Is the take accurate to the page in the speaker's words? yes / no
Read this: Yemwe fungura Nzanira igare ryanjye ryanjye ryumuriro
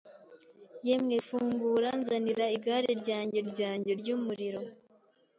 yes